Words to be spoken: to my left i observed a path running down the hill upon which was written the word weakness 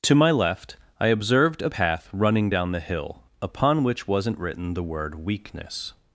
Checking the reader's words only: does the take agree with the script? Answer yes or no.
no